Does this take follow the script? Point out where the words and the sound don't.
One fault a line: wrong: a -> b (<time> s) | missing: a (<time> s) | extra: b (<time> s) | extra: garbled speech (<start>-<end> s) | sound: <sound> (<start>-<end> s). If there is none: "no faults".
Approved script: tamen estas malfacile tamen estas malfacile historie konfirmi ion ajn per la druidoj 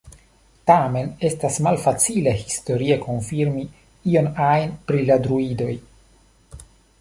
missing: tamen estas malfacile (2.3 s)
wrong: per -> pri (4.9 s)